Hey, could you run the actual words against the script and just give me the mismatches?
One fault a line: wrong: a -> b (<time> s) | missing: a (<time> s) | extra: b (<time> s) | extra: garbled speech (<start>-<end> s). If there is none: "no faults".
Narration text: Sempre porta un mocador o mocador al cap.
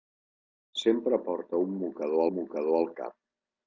no faults